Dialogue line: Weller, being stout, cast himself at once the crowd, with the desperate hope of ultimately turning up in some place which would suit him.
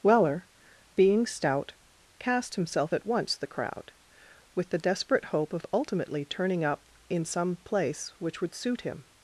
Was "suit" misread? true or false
false